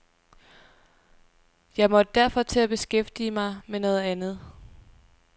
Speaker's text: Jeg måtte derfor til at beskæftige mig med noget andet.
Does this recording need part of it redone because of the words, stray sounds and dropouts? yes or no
no